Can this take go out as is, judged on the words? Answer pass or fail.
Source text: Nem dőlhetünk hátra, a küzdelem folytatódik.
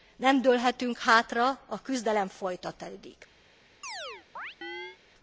pass